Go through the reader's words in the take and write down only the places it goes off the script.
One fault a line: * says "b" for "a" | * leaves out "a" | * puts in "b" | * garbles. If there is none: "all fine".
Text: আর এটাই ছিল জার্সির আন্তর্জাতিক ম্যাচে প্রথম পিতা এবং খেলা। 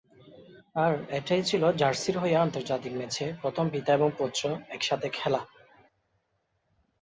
* puts in "হয়ে"
* puts in "পুত্র একসাথে"